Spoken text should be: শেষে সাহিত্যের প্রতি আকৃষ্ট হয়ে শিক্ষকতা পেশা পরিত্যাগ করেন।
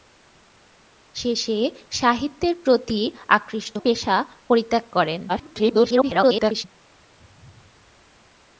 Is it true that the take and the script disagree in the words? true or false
true